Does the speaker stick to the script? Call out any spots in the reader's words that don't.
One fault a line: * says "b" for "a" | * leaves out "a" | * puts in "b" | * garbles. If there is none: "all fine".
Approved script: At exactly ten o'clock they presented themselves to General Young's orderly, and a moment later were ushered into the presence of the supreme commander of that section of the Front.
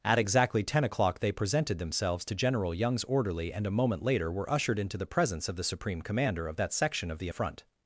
all fine